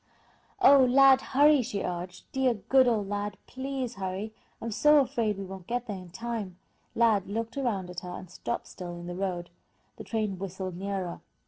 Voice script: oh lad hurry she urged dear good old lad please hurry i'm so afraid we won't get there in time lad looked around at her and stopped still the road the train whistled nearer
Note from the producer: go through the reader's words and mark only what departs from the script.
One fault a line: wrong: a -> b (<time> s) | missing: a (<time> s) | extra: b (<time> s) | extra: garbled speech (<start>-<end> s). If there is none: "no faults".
extra: in (8.9 s)